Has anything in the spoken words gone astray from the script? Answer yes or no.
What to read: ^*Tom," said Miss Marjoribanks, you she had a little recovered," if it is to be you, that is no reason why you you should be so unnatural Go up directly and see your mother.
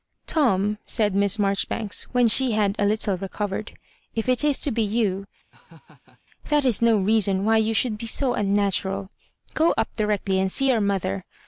yes